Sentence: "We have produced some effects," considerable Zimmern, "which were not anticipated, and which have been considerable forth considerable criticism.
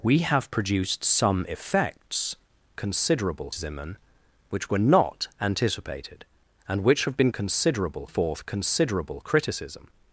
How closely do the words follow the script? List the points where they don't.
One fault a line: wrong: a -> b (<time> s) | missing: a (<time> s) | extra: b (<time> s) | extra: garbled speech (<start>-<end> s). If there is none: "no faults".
no faults